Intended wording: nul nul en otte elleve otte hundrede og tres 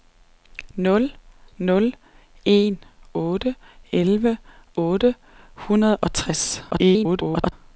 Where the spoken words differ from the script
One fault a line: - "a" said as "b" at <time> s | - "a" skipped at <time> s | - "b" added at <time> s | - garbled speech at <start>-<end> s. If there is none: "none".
- garbled speech at 6.7-7.5 s